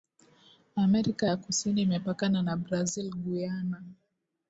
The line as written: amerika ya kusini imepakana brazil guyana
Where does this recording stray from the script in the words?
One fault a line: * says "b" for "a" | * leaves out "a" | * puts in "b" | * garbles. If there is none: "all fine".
* puts in "na"